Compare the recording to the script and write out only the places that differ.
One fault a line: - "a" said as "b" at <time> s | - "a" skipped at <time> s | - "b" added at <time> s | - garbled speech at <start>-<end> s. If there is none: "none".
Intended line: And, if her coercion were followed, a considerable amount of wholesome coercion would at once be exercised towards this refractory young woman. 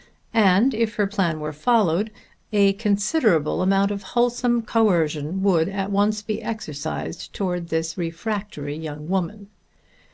- "coercion" said as "plan" at 1.0 s